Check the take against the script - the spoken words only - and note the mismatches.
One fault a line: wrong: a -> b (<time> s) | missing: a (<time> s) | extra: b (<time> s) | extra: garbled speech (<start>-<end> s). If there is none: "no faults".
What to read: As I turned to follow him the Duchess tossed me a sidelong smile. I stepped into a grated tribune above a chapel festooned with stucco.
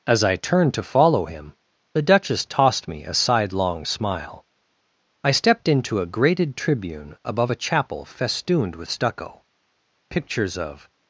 extra: Pictures of (10.1 s)